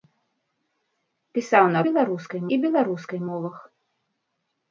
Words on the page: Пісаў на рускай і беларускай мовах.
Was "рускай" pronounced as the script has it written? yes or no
no